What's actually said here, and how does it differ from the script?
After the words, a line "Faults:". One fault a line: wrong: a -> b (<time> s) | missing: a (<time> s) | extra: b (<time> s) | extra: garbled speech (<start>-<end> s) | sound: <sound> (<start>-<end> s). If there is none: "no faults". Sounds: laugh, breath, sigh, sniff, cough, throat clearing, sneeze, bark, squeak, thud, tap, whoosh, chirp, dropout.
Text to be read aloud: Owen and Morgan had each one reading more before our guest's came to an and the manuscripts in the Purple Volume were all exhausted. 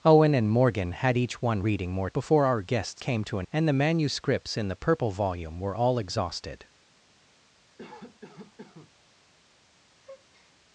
Owen and Morgan had each one reading more before our guest's came to an and the manuscripts in the Purple Volume were all exhausted.
Faults:
sound: cough (7.8-8.9 s)
sound: breath (10.0-10.5 s)